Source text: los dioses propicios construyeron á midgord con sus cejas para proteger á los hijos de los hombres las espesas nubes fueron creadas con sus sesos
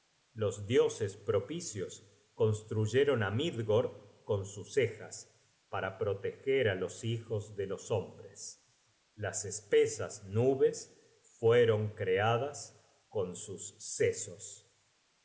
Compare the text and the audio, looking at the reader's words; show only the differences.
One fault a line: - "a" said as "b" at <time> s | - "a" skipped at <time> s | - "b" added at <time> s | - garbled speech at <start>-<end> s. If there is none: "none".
none